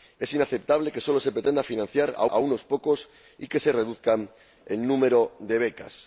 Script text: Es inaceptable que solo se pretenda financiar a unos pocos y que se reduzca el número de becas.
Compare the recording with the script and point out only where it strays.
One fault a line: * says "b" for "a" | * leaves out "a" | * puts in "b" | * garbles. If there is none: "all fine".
* puts in "a"